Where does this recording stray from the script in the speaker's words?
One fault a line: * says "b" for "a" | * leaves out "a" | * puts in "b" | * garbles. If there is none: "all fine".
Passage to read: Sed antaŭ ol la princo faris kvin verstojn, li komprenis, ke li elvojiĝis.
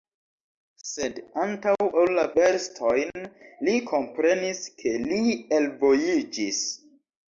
* leaves out "princo faris kvin"